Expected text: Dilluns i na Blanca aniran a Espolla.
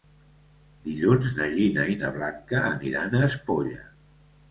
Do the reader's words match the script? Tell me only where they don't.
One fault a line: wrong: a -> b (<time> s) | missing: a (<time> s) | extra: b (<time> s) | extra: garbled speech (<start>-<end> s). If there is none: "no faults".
extra: na Gina (1.4 s)